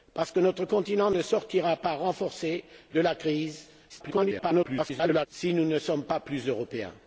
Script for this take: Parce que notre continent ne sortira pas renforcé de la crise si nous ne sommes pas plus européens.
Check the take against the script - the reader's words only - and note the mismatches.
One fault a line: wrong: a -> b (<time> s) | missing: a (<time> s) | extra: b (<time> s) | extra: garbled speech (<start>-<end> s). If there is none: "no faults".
extra: garbled speech (3.9-5.3 s)